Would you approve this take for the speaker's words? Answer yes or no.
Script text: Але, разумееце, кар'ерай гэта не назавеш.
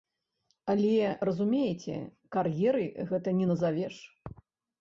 yes